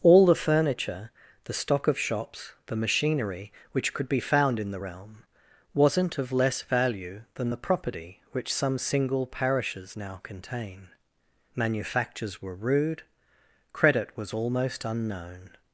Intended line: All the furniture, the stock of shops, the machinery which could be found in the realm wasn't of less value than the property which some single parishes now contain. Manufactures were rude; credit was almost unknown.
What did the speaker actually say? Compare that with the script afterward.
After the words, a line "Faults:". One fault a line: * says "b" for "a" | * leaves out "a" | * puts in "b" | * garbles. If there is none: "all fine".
All the furniture, the stock of shops, the machinery which could be found in the realm wasn't of less value than the property which some single parishes now contain. Manufactures were rude; credit was almost unknown.
Faults:
all fine